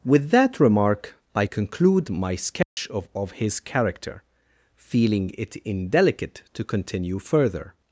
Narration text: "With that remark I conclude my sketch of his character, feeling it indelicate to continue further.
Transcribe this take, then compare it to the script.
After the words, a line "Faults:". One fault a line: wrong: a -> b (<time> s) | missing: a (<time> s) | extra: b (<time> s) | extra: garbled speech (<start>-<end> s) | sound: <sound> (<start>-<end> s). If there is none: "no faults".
"With that remark I conclude my sketch of of his character, feeling it indelicate to continue further.
Faults:
sound: dropout (2.6-2.8 s)
extra: of (3.2 s)